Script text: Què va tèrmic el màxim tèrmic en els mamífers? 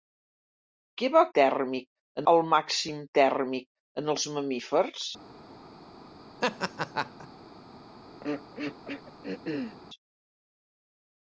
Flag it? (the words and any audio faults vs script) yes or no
yes